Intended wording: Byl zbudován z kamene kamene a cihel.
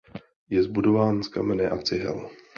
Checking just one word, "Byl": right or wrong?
wrong